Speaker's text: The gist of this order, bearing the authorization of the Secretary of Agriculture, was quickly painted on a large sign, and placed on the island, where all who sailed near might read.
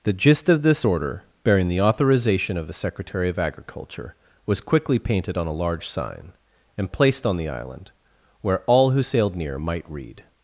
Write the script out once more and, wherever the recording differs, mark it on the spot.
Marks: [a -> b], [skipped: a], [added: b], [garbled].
The gist of this order, bearing the authorization of the Secretary of Agriculture, was quickly painted on a large sign, and placed on the island, where all who sailed near might read.